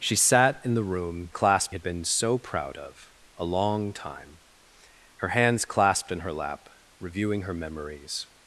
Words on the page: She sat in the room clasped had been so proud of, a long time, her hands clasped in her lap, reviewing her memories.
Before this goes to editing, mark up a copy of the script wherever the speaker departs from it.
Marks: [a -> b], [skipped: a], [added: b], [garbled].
She sat in the room clasped had been so proud of, a long time, her hands clasped in her lap, reviewing her memories.